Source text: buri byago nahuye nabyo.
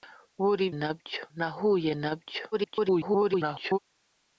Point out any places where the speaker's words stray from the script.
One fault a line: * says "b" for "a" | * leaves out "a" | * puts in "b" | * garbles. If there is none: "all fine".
* says "nabyo" for "byago"
* garbles